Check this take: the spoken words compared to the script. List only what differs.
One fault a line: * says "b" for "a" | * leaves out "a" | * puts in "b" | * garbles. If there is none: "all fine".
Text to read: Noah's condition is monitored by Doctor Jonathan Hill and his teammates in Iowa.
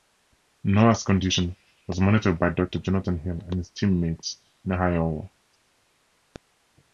* says "was" for "is"